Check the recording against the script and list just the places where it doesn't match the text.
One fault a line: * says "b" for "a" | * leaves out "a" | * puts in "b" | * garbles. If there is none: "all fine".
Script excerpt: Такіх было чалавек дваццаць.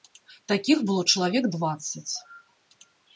all fine